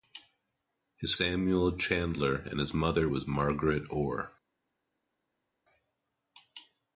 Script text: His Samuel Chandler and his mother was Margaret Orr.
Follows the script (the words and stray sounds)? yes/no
yes